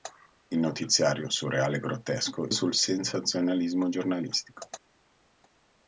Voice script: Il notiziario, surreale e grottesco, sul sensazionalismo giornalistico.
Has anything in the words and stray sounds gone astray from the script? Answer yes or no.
no